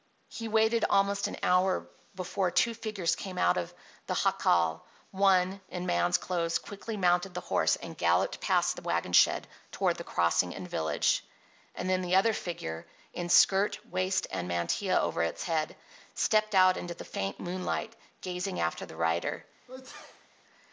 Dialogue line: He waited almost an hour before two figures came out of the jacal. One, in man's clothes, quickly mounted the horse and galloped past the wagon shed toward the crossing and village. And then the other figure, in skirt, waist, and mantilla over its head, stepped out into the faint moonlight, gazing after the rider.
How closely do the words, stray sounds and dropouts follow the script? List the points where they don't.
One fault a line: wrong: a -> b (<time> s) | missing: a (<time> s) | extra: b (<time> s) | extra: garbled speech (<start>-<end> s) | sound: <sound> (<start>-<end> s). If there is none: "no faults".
sound: sneeze (19.7-20.3 s)